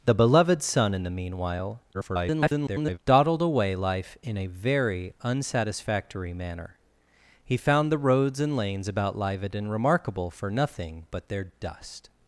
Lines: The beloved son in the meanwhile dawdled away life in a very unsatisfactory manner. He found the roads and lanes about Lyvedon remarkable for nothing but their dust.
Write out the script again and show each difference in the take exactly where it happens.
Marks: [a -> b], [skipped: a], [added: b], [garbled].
The beloved son in the meanwhile [garbled] dawdled away life in a very unsatisfactory manner. He found the roads and lanes about Lyvedon remarkable for nothing but their dust.